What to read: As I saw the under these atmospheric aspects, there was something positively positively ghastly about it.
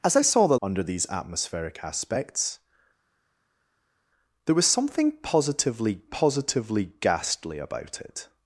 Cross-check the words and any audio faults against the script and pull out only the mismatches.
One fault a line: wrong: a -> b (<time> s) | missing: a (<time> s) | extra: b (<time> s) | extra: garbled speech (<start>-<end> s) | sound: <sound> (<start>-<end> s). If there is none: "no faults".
no faults